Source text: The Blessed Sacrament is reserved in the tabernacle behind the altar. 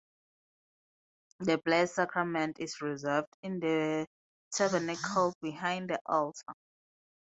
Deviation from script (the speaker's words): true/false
false